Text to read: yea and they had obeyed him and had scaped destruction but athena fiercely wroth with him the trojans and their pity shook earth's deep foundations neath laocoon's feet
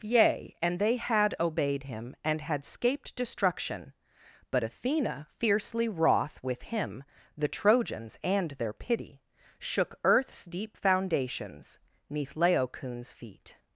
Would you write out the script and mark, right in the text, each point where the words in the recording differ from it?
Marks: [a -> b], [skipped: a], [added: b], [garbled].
yea and they had obeyed him and had scaped destruction but athena fiercely wroth with him the trojans and their pity shook earth's deep foundations neath laocoon's feet